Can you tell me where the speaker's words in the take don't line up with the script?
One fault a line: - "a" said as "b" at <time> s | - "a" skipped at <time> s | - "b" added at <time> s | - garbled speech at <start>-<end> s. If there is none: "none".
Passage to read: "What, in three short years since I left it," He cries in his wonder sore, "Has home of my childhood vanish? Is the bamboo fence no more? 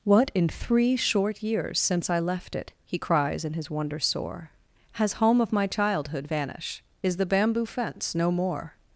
none